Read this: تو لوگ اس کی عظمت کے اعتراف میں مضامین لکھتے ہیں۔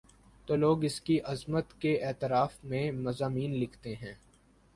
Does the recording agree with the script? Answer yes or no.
yes